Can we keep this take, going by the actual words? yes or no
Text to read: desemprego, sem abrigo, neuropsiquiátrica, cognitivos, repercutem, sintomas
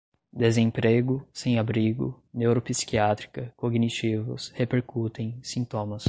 yes